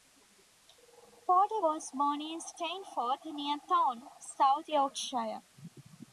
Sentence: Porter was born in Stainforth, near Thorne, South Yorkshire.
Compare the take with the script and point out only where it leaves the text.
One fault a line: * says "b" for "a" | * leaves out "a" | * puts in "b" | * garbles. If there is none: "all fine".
all fine